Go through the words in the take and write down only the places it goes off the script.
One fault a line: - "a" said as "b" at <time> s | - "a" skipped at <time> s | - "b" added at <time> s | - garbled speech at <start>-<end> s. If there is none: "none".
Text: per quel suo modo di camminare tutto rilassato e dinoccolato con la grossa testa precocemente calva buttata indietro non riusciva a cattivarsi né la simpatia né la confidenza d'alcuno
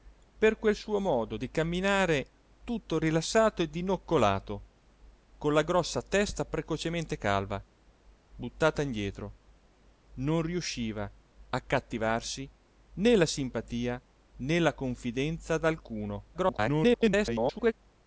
- garbled speech at 16.3-17.7 s